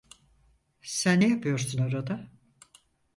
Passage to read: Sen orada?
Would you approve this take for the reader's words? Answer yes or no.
no